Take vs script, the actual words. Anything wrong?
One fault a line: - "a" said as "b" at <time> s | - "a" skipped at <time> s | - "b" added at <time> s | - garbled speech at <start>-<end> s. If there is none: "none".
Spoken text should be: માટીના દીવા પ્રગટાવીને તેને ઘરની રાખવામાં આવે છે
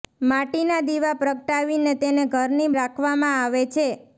none